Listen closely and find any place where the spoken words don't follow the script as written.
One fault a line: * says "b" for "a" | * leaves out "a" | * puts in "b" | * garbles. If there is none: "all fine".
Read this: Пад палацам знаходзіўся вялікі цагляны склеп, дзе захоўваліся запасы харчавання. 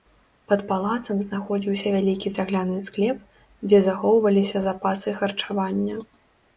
all fine